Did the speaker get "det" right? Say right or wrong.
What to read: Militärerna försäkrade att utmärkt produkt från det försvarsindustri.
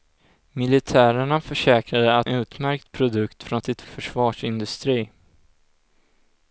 right